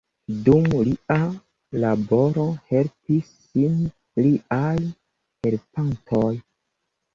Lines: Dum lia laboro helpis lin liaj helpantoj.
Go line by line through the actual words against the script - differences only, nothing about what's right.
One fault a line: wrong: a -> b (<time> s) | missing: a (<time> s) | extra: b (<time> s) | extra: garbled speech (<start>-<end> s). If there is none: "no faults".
no faults